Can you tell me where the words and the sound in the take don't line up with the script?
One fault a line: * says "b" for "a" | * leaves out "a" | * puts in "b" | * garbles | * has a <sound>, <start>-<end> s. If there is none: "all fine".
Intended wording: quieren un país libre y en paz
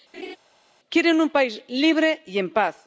* has a laugh, 0.1-0.4 s